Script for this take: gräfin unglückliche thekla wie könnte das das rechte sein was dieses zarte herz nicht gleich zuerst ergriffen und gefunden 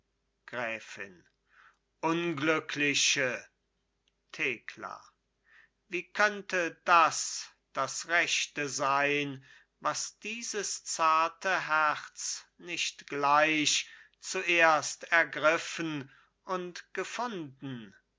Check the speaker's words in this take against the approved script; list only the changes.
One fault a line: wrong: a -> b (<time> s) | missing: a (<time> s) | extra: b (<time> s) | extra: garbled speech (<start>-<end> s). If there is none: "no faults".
no faults